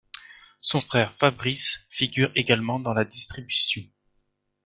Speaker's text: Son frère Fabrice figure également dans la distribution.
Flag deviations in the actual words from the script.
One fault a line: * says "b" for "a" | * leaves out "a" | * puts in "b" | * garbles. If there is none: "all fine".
all fine